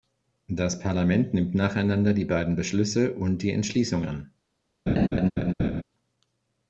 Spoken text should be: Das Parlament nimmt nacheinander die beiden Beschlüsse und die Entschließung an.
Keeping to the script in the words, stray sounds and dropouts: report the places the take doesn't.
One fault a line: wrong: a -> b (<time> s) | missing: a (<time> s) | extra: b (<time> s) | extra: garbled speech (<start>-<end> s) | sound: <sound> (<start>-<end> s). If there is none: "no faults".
sound: laugh (4.9-5.8 s)